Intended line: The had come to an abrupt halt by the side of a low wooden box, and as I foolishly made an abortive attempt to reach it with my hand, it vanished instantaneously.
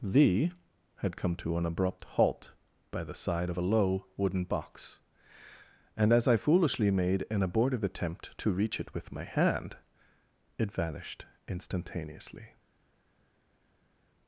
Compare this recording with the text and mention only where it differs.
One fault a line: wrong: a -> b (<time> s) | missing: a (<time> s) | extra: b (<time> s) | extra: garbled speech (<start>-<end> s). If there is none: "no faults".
no faults